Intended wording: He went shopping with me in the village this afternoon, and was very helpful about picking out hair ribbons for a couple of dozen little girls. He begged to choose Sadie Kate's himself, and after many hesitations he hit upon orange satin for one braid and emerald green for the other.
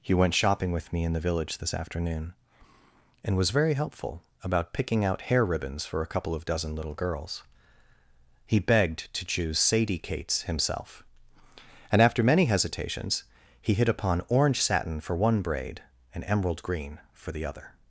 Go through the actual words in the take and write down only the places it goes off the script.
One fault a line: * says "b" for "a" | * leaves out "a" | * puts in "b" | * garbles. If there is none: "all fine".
all fine